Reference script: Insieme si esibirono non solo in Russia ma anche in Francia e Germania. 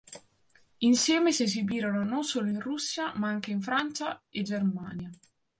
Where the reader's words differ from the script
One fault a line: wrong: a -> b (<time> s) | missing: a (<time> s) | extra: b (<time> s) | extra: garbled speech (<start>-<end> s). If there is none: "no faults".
no faults